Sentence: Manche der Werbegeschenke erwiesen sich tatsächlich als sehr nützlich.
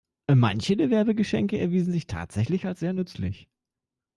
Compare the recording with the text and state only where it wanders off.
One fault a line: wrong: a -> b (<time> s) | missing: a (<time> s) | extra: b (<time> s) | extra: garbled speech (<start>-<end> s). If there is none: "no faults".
no faults